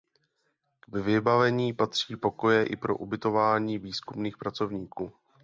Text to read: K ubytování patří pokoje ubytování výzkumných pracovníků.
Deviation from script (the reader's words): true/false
true